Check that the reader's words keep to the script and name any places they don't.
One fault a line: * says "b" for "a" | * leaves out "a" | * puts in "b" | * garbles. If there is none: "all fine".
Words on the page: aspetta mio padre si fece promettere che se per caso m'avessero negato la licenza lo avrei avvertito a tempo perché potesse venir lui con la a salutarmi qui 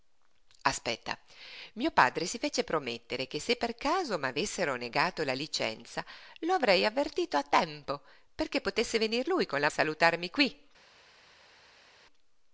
all fine